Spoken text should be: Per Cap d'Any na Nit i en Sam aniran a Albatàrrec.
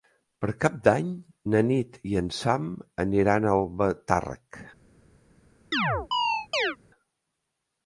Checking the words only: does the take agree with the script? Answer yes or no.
yes